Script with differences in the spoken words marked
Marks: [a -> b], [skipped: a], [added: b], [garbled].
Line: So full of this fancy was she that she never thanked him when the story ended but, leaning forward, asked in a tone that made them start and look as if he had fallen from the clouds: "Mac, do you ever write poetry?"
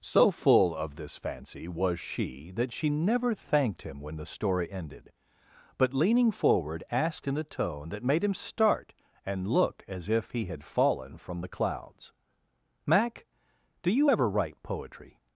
So full of this fancy was she that she never thanked him when the story ended but, leaning forward, asked in a tone that made [them -> him] start and look as if he had fallen from the clouds: "Mac, do you ever write poetry?"